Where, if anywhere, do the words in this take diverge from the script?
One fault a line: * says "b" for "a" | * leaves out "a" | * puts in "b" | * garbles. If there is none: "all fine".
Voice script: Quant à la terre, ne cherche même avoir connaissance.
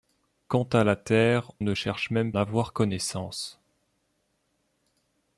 all fine